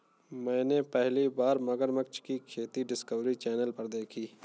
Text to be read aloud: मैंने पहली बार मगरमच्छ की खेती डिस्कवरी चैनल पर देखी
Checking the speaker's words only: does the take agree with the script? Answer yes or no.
yes